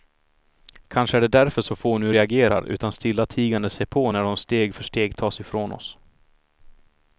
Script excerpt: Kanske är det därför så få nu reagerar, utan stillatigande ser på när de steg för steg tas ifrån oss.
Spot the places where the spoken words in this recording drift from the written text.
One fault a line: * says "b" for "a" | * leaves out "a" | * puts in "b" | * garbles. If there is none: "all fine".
all fine